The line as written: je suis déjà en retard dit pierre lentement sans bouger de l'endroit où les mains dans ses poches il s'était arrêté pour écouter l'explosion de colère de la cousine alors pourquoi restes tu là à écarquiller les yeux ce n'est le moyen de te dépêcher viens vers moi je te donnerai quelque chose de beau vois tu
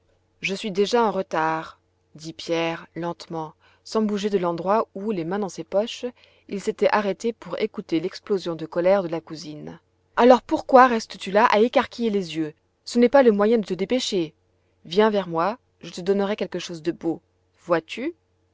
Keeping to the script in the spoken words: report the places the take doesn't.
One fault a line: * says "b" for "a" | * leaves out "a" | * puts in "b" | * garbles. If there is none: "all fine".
* puts in "pas"